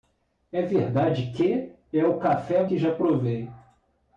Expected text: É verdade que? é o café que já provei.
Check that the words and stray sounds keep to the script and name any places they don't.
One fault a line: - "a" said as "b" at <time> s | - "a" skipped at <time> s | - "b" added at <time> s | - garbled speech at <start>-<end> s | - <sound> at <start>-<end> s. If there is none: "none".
none